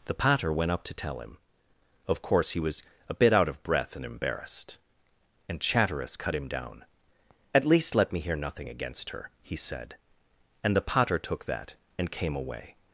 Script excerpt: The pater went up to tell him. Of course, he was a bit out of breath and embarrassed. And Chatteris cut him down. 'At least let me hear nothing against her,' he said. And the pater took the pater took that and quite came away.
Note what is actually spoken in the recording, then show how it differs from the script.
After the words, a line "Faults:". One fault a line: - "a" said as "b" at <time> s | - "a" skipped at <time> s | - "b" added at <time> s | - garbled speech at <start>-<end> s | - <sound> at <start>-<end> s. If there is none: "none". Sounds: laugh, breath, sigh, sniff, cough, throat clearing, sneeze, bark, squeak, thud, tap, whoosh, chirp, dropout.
The pater went up to tell him. Of course, he was a bit out of breath and embarrassed. And Chatteris cut him down. 'At least let me hear nothing against her,' he said. And the pater took that and came away.
Faults:
- "the pater took" skipped at 11.5 s
- "quite" skipped at 12.1 s